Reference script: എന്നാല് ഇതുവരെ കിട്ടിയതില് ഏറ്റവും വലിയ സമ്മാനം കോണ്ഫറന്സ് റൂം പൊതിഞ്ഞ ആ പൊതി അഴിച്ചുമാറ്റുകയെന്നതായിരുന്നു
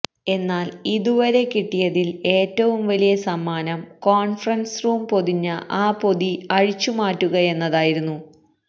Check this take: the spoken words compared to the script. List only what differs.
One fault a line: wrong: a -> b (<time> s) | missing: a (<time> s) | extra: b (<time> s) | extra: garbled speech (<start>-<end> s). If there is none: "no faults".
no faults